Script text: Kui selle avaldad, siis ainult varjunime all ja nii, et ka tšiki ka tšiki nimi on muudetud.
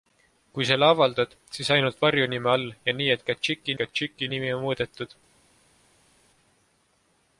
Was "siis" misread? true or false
false